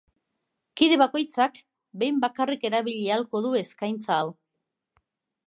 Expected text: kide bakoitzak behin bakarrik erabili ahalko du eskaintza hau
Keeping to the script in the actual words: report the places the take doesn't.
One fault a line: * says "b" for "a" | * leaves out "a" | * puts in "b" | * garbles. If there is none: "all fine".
all fine